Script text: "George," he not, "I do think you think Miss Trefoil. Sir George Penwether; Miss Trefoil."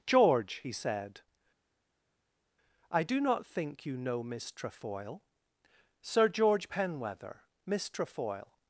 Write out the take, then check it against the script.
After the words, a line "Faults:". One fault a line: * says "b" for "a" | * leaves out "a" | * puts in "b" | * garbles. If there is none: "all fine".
"George," he said, "I do not think you know Miss Trefoil. Sir George Penwether; Miss Trefoil."
Faults:
* says "said" for "not"
* puts in "not"
* says "know" for "think"